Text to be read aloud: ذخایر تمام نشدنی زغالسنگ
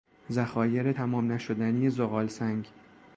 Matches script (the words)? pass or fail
pass